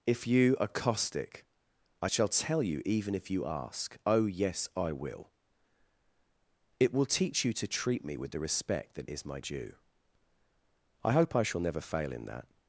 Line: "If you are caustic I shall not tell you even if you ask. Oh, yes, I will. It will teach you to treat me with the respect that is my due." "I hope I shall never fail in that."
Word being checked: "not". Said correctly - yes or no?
no